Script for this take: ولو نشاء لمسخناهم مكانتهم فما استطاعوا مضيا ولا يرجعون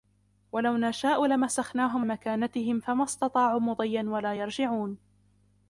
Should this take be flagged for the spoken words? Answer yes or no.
no